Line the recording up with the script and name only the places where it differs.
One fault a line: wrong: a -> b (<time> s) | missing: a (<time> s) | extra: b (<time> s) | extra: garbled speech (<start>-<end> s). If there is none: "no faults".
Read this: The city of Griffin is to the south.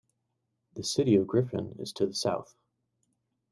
no faults